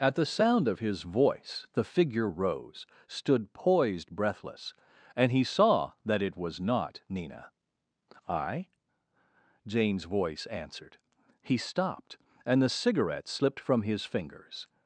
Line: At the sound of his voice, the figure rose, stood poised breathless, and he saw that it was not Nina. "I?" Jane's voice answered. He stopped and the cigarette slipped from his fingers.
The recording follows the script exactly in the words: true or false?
true